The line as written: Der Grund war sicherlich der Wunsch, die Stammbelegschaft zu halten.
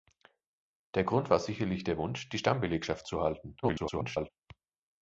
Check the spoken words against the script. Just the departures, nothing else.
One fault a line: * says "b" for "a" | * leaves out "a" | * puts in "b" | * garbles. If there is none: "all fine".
* garbles